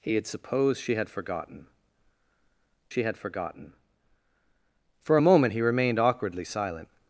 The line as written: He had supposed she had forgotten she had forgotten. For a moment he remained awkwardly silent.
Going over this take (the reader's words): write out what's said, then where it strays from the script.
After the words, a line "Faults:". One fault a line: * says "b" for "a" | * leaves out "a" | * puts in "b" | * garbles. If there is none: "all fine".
He had supposed she had forgotten she had forgotten. For a moment he remained awkwardly silent.
Faults:
all fine